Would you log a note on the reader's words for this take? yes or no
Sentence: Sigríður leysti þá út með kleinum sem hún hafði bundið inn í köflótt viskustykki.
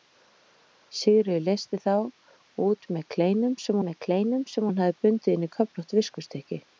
yes